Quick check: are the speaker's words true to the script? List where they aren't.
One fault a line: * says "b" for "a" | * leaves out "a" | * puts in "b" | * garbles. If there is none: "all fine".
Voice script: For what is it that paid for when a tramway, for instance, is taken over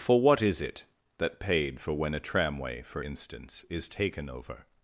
all fine